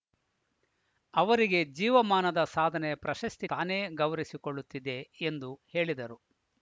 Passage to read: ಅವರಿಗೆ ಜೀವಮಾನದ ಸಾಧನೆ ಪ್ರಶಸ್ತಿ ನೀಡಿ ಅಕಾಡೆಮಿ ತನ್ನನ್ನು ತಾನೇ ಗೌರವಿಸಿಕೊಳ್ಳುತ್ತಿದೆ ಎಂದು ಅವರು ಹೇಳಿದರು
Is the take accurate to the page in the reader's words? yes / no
no